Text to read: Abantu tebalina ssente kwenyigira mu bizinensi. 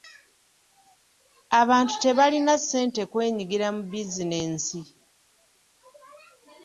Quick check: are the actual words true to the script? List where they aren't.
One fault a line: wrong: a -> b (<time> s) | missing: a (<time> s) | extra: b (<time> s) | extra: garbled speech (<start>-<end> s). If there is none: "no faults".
no faults